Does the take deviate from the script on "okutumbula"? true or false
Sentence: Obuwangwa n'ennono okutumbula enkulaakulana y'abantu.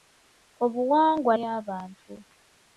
true